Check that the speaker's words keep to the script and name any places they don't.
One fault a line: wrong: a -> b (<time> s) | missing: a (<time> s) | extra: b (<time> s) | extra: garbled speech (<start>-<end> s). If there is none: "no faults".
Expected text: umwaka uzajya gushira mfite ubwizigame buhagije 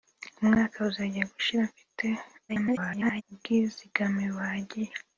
extra: garbled speech (2.5-3.2 s)